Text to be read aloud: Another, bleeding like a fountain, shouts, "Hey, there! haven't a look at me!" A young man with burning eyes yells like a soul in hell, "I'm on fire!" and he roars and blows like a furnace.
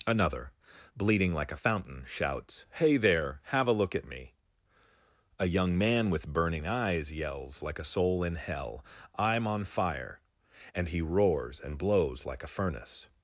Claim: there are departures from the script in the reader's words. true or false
true